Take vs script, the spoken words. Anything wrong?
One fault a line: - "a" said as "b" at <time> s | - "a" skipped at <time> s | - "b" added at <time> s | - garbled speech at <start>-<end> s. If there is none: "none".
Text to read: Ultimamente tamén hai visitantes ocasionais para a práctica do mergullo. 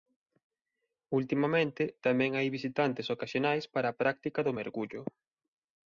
none